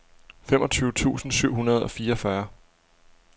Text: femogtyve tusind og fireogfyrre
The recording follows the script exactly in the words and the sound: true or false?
false